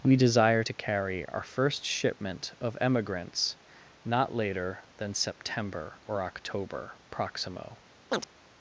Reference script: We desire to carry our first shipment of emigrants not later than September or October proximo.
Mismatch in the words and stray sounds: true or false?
true